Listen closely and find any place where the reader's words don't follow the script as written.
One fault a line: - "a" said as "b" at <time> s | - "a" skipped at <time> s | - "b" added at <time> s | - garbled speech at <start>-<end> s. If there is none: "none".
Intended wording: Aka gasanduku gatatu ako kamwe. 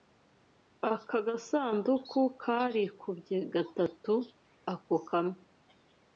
- "karikubye" added at 2.4 s